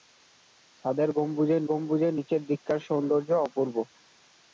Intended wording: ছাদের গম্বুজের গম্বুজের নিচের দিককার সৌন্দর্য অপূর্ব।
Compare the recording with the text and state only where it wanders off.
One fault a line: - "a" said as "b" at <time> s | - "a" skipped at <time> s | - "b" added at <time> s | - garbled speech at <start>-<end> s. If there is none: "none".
none